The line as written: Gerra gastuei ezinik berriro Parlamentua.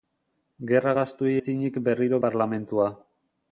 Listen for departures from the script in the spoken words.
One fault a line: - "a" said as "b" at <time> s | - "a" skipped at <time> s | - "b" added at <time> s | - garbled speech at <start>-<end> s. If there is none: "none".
none